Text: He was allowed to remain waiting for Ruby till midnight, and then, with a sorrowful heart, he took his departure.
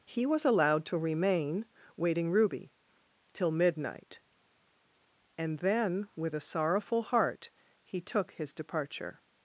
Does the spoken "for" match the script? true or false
false